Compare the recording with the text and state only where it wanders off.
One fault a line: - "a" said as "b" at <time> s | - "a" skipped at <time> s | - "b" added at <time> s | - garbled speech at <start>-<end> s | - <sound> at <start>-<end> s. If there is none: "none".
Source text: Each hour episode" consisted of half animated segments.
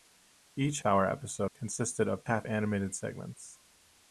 none